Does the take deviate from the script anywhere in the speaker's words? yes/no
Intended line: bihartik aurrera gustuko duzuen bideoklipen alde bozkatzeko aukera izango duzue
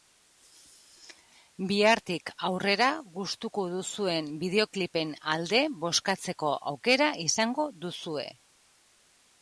no